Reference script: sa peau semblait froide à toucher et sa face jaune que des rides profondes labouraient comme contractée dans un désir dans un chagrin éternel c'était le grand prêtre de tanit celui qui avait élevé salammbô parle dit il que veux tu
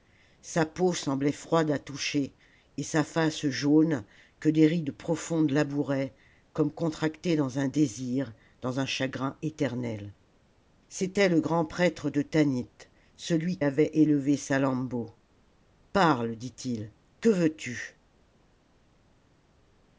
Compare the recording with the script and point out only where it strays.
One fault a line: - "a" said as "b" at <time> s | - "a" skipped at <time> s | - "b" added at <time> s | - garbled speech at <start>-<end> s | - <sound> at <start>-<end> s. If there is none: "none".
- "qui" skipped at 13.6 s